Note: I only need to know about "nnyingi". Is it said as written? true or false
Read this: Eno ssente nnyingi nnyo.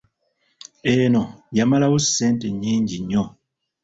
true